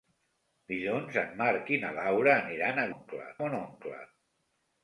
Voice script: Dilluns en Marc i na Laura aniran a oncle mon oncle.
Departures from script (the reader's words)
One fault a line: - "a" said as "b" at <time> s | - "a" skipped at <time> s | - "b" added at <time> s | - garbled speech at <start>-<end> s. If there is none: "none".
none